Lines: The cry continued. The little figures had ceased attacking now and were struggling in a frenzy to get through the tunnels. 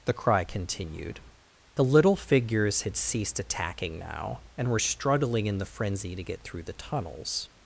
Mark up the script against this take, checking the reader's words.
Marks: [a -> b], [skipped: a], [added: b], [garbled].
The cry continued. The little figures had ceased attacking now and were struggling in [a -> the] frenzy to get through the tunnels.